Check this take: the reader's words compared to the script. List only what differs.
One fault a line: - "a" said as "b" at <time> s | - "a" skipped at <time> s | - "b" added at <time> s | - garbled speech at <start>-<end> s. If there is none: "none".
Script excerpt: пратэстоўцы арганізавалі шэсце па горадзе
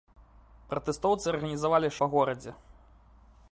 - "шэсце" skipped at 1.9 s